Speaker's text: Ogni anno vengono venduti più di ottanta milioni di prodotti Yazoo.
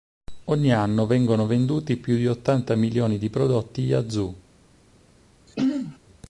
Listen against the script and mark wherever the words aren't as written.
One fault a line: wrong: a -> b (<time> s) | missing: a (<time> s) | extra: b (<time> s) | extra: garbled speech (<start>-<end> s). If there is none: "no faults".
no faults